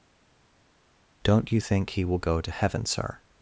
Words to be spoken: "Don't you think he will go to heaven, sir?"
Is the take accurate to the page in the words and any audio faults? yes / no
yes